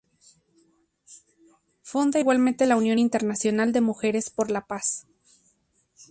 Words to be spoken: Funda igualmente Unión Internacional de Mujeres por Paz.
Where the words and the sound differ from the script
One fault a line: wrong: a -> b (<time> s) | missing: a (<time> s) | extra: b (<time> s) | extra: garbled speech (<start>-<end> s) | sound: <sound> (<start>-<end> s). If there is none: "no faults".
extra: la (2.6 s)
extra: la (4.5 s)